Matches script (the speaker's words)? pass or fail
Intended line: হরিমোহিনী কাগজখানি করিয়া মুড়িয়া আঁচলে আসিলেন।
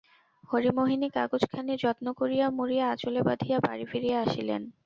fail